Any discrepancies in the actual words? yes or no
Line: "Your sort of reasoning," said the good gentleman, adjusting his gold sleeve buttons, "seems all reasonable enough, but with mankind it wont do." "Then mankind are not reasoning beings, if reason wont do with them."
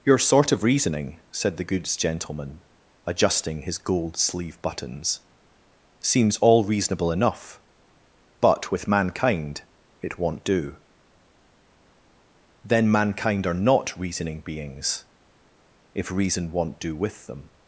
yes